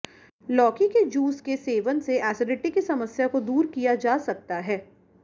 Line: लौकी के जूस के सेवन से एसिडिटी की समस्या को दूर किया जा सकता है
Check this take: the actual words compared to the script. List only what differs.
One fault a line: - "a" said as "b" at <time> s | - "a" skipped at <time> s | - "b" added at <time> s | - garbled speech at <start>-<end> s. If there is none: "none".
none